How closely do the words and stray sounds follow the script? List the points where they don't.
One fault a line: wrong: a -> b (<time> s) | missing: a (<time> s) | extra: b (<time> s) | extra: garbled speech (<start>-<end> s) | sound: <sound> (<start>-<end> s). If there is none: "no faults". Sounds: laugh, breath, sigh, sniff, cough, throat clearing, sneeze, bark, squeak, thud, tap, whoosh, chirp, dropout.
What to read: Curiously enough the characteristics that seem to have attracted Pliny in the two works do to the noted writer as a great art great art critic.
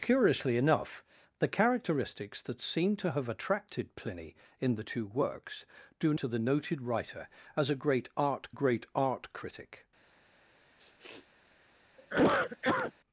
sound: sniff (10.8-11.3 s)
sound: cough (12.0-12.9 s)